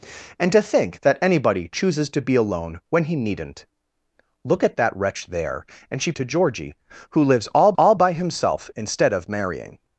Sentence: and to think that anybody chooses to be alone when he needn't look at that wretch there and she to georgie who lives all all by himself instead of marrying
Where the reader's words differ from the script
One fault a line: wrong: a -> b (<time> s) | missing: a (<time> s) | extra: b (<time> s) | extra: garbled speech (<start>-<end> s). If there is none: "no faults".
no faults